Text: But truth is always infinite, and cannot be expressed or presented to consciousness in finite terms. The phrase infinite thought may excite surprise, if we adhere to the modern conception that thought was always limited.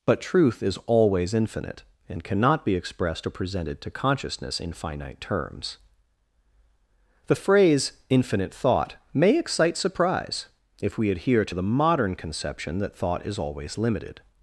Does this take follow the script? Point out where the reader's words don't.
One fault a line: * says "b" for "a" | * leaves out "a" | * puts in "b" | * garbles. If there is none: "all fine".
* says "is" for "was"